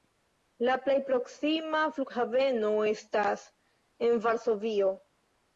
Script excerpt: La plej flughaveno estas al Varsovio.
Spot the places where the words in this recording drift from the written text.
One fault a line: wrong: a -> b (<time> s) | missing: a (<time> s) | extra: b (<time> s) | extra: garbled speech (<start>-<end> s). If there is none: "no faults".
extra: proksima (1.1 s)
wrong: al -> en (4.1 s)